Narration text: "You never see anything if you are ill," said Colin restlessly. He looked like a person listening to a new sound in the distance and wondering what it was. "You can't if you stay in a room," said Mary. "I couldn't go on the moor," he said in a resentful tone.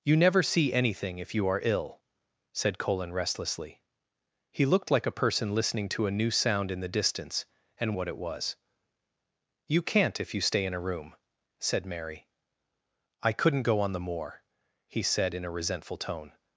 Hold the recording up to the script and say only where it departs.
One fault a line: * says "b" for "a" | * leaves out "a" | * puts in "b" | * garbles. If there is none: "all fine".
* leaves out "wondering"